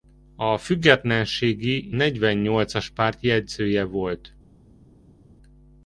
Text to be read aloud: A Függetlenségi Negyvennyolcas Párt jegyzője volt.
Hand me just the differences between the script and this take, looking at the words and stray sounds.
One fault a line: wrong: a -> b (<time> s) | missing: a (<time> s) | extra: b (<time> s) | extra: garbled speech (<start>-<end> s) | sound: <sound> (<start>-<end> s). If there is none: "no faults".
no faults